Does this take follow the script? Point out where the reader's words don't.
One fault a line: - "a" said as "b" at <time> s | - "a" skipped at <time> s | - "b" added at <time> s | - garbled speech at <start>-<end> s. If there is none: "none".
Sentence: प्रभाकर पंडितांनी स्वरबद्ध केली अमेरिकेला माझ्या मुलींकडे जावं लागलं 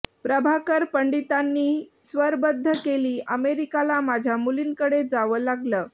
none